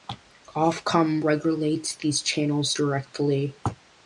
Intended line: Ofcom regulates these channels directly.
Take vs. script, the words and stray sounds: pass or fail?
pass